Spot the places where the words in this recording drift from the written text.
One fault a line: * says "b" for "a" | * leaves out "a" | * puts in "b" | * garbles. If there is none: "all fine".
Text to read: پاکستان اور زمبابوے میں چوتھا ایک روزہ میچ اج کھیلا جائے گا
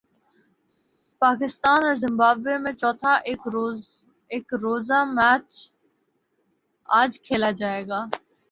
all fine